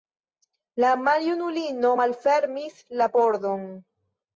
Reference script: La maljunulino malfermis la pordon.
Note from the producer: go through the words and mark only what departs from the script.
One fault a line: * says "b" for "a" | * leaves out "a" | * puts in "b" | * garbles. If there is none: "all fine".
all fine